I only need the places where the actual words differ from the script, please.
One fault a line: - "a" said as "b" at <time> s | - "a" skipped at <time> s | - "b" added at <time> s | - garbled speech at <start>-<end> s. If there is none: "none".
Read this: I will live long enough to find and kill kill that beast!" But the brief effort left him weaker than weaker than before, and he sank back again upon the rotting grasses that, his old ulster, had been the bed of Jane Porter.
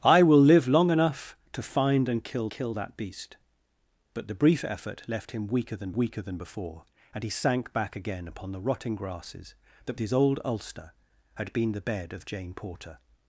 none